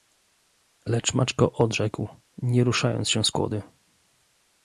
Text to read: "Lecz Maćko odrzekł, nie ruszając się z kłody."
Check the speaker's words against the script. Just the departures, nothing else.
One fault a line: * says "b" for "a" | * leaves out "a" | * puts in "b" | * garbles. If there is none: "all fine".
all fine